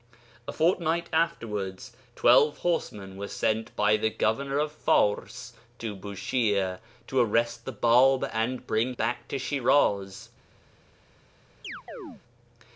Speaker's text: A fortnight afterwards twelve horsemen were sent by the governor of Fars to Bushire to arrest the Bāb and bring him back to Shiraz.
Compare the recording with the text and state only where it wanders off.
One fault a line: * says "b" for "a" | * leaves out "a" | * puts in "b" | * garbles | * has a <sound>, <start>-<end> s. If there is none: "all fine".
* leaves out "him"
* has a chirp, 11.6-12.2 s